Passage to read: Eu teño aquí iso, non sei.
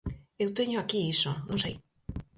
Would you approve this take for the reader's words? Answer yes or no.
yes